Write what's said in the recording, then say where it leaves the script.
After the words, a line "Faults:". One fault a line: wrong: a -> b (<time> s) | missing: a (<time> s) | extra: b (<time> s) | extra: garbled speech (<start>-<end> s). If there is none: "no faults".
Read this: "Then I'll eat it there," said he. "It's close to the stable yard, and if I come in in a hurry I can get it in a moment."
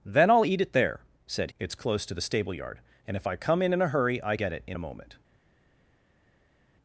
"Then I'll eat it there," said. "It's close to the stable yard, and if I come in in a hurry I get it in a moment."
Faults:
missing: he (1.5 s)
missing: can (4.4 s)